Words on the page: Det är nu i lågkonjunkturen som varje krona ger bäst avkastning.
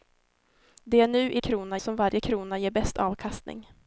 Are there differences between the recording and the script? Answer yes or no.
yes